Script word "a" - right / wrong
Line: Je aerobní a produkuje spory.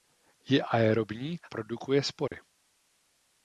wrong